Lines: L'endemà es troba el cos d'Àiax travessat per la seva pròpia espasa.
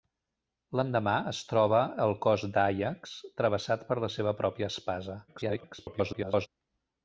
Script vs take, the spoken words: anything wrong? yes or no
yes